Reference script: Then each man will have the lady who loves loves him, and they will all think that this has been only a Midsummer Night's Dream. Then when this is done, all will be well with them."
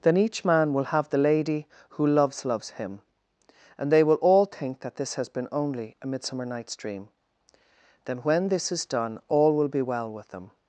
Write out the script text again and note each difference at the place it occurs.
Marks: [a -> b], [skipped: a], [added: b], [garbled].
Then each man will have the lady who loves loves him, and they will all think that this has been only a Midsummer Night's Dream. Then when this is done, all will be well with them."